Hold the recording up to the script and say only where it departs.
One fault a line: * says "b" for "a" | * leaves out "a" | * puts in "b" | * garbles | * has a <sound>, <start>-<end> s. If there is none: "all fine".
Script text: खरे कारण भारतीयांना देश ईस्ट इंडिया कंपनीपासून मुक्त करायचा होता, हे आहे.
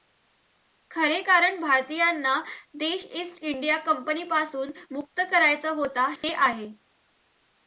* has a dropout, 6.2-6.2 s